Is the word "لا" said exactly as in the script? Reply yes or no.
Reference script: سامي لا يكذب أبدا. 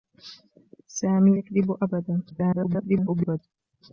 no